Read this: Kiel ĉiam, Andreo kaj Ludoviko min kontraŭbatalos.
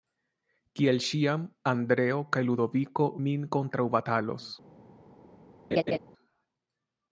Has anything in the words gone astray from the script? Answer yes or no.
no